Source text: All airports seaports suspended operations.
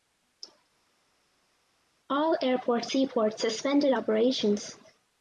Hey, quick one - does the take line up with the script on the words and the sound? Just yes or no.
yes